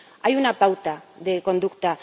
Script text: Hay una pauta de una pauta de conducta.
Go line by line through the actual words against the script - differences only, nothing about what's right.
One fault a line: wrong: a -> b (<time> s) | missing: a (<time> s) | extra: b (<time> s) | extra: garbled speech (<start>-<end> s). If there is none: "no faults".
missing: una pauta de (1.4 s)